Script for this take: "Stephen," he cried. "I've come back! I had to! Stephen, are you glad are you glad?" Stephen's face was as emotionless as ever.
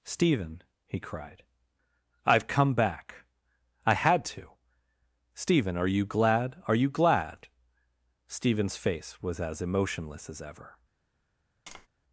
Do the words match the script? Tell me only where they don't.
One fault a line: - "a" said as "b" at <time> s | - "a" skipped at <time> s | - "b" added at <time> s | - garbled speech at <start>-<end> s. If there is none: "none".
none